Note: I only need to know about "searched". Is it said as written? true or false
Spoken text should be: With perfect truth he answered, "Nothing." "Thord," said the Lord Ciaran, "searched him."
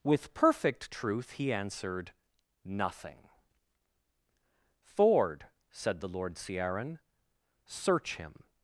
false